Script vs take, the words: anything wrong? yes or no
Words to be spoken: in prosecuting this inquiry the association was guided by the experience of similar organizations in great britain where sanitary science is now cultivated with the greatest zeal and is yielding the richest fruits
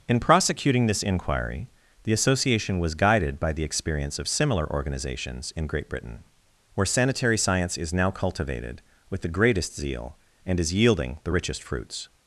no